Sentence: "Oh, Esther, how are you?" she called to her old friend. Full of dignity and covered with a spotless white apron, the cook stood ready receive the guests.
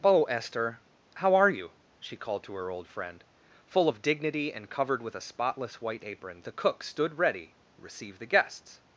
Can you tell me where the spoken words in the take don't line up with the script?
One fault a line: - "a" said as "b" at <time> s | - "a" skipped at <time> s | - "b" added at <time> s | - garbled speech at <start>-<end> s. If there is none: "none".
none